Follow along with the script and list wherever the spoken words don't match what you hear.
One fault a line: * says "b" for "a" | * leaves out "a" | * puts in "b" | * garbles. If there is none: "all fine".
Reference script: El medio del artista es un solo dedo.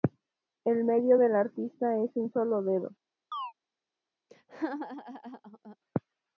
all fine